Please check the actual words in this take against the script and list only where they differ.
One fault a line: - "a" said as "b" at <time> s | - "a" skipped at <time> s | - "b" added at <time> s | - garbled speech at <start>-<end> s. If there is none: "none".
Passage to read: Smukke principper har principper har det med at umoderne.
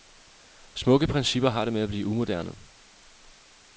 - "principper har" skipped at 1.6 s
- "blive" added at 1.9 s